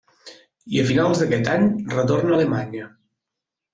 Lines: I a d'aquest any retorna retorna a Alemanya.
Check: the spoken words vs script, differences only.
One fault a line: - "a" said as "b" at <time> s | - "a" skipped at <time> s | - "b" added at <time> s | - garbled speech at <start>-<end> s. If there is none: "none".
- "finals" added at 0.9 s
- "retorna" skipped at 2.4 s